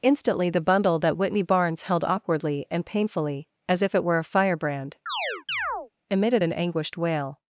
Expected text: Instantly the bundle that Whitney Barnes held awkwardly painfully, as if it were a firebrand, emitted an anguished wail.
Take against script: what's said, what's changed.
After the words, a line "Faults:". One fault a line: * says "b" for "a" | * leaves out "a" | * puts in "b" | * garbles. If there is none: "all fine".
Instantly the bundle that Whitney Barnes held awkwardly and painfully, as if it were a firebrand, emitted an anguished wail.
Faults:
* puts in "and"